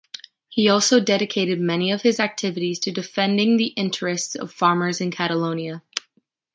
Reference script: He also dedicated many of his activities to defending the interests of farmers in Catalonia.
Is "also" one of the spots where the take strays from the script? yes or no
no